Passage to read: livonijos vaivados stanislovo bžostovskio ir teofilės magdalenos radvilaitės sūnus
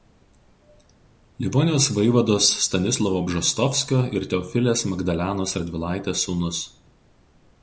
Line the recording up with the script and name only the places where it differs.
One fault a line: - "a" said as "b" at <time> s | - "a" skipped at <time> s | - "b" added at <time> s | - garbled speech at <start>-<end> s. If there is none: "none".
none